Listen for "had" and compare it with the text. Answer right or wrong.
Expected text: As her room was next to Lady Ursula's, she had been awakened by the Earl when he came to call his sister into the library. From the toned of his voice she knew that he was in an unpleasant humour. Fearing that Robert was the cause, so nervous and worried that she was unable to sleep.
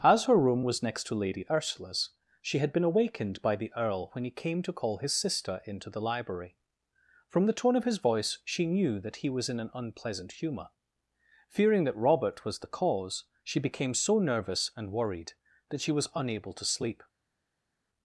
right